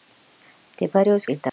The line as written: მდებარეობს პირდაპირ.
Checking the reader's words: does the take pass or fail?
pass